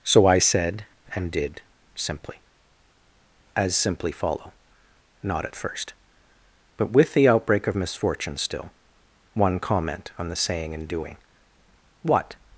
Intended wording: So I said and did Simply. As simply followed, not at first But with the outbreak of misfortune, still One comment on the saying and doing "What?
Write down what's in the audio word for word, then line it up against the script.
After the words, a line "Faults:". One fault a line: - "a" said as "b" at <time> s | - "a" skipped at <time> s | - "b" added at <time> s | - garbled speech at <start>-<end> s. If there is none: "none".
So I said and did Simply. As simply follow, not at first But with the outbreak of misfortune, still One comment on the saying and doing "What?
Faults:
- "followed" said as "follow" at 4.1 s